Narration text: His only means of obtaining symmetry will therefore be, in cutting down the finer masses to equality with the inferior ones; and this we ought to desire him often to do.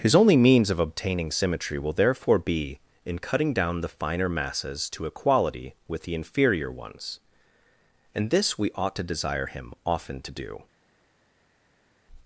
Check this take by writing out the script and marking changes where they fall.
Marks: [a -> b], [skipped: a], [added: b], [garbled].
His only means of obtaining symmetry will therefore be, in cutting down the finer masses to equality with the inferior ones; and this we ought to desire him often to do.